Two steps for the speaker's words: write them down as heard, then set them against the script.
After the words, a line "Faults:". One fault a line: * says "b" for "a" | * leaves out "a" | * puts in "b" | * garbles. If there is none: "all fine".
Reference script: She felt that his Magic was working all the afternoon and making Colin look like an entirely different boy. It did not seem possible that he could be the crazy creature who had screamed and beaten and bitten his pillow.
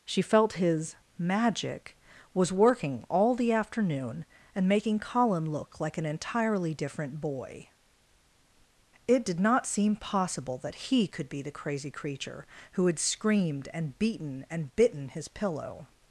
She felt his Magic was working all the afternoon and making Colin look like an entirely different boy. It did not seem possible that he could be the crazy creature who had screamed and beaten and bitten his pillow.
Faults:
* leaves out "that"